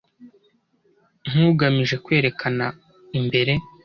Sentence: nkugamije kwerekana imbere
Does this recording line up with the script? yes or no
yes